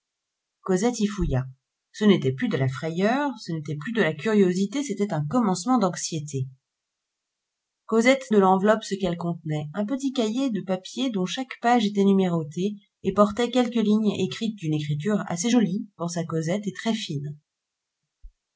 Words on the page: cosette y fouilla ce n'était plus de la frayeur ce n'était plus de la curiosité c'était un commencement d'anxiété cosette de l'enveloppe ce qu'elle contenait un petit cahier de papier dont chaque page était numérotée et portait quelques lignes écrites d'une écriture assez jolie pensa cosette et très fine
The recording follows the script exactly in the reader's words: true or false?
true